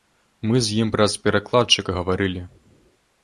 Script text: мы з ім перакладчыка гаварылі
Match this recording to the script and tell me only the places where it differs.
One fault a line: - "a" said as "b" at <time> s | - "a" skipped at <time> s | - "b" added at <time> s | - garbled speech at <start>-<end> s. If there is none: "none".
- "праз" added at 0.9 s